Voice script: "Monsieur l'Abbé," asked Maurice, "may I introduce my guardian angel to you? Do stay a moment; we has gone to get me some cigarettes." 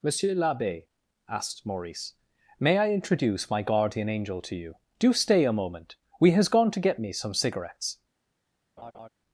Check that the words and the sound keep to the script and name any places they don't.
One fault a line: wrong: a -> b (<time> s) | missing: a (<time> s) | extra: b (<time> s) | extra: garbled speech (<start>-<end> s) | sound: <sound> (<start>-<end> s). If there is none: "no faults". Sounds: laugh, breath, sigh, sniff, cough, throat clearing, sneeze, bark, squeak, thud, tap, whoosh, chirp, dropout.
sound: laugh (8.8-9.1 s)